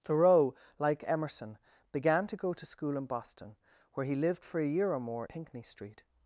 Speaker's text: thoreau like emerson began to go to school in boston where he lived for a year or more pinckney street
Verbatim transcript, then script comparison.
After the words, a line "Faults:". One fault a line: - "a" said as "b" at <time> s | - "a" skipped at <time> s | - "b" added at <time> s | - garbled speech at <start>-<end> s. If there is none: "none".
thoreau like emerson began to go to school in boston where he lived for a year or more pinckney street
Faults:
none